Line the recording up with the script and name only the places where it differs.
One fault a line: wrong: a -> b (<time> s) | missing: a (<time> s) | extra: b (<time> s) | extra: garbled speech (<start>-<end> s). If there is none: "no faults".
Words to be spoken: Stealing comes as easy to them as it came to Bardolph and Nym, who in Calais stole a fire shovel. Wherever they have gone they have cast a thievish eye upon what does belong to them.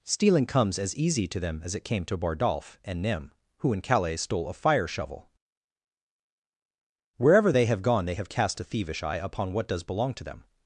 no faults